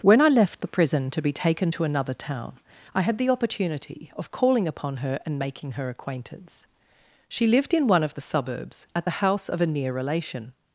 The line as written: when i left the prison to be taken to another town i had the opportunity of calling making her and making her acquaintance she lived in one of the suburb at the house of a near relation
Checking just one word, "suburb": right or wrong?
wrong